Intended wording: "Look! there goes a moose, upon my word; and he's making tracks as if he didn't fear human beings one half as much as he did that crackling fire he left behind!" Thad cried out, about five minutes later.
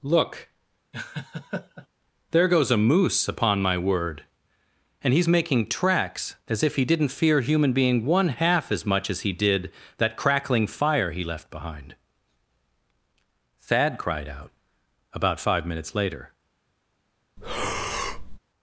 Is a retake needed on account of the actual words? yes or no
yes